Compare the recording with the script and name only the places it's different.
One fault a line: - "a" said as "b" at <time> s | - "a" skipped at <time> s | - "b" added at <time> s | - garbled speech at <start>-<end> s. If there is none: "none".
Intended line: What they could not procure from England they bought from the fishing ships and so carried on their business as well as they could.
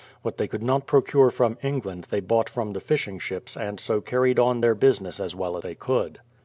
- "as" skipped at 5.6 s